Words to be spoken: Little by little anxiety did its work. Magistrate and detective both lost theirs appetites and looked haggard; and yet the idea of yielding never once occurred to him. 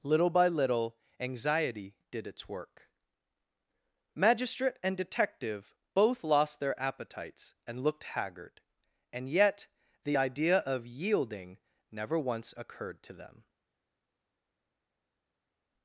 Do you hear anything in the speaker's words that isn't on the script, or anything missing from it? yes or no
yes